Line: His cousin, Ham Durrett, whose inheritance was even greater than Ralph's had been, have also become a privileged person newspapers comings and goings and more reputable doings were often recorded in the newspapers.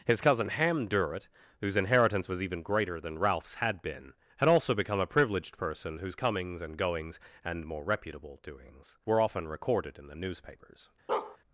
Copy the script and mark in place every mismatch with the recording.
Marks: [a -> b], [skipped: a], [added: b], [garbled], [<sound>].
His cousin, Ham Durrett, whose inheritance was even greater than Ralph's had been, [have -> had] also become a privileged person [newspapers -> whose] comings and goings and more reputable doings were often recorded in the newspapers. [bark]